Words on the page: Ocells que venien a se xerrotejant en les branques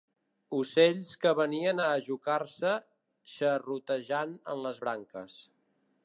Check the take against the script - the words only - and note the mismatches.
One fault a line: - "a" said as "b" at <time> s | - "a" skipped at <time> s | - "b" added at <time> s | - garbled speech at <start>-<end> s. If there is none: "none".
- "ajocar" added at 1.9 s